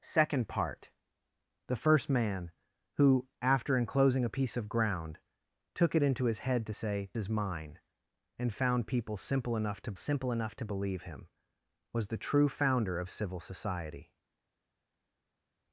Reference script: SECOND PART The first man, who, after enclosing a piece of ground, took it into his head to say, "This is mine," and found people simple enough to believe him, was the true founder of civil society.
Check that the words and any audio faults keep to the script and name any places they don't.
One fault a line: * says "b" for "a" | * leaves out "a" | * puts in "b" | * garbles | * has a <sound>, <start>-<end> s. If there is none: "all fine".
* leaves out "This"
* puts in "simple enough to"